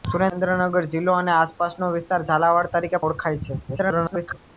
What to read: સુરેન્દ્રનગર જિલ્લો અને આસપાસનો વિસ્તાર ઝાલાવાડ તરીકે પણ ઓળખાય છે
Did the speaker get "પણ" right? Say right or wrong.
wrong